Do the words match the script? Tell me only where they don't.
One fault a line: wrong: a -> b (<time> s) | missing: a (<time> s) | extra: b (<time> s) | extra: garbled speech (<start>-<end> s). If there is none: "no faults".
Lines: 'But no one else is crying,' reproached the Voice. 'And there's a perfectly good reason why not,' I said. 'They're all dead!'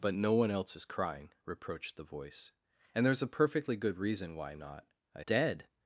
missing: said They're all (5.2 s)